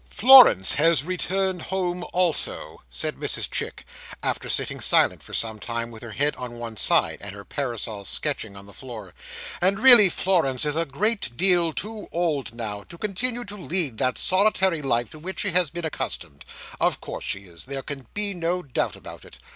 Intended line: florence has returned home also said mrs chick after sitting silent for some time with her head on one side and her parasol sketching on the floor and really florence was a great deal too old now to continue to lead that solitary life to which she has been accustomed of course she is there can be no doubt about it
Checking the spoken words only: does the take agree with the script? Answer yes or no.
no